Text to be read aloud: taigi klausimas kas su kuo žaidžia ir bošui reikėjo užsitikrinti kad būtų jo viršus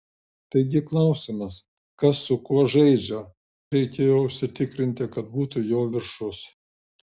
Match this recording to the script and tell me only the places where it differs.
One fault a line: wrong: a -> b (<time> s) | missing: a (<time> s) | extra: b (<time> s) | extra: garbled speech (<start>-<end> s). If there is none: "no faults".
missing: ir bošui (3.2 s)